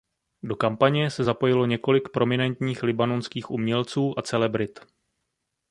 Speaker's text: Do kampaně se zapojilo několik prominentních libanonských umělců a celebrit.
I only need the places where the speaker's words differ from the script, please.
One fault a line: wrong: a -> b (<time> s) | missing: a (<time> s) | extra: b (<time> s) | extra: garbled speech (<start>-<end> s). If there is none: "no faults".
no faults